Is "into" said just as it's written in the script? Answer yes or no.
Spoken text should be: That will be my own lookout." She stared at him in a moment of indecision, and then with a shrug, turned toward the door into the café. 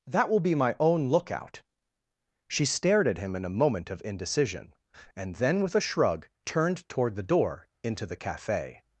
yes